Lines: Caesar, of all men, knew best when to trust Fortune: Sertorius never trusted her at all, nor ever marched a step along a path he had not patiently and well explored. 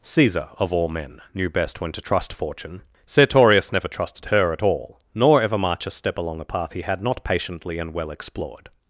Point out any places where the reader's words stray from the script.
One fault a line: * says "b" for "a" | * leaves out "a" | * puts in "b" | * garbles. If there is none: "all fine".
* says "march" for "marched"